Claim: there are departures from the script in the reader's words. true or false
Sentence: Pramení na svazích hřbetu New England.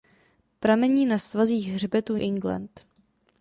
true